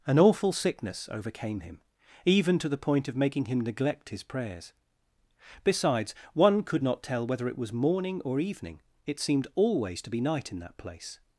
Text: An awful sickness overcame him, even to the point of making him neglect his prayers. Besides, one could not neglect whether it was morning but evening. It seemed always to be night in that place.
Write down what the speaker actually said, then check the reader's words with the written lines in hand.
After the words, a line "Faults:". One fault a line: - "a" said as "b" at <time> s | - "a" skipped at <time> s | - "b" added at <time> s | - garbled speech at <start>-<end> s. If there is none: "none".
An awful sickness overcame him, even to the point of making him neglect his prayers. Besides, one could not tell whether it was morning or evening. It seemed always to be night in that place.
Faults:
- "neglect" said as "tell" at 7.0 s
- "but" said as "or" at 8.2 s